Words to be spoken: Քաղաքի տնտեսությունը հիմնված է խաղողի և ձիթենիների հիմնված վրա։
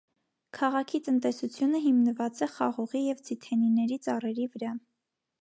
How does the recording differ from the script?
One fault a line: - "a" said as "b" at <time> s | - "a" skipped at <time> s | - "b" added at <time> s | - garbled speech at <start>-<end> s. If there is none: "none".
- "հիմնված" said as "ծառերի" at 4.1 s